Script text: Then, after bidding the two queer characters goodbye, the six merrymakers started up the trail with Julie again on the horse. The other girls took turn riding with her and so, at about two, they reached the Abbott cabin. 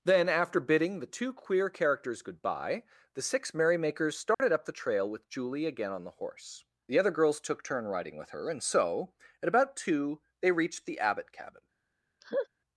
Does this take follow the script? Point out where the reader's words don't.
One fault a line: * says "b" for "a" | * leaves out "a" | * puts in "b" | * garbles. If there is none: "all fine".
all fine